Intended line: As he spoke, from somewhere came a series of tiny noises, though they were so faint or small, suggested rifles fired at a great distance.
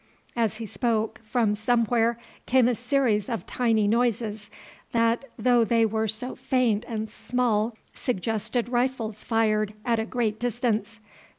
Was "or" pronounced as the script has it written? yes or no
no